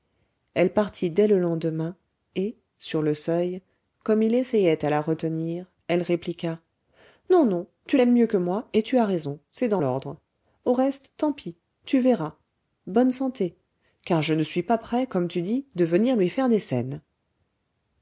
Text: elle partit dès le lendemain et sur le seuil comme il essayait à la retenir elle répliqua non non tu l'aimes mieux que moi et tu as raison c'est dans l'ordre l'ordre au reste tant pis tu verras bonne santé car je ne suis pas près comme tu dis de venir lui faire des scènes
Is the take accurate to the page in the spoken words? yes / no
no